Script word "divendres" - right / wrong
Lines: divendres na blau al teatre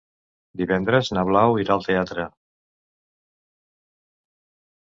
right